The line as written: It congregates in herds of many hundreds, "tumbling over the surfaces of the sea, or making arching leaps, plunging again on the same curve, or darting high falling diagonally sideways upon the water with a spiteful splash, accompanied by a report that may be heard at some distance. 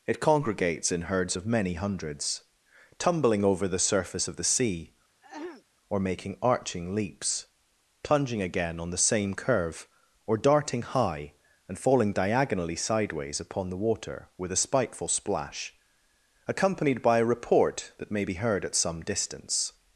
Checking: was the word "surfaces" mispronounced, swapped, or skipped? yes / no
yes